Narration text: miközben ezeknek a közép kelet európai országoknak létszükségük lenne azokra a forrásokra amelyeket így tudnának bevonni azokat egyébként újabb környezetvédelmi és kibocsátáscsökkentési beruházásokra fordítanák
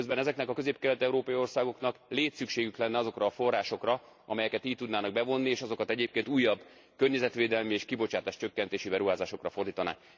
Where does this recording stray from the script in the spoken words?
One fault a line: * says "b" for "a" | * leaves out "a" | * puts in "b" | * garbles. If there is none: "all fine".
* puts in "és"